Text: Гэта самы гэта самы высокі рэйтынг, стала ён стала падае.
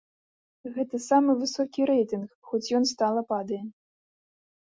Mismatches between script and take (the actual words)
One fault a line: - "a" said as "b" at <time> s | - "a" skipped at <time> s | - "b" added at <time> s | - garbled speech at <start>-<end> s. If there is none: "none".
- "гэта самы" skipped at 1.4 s
- "стала" said as "хоць" at 2.5 s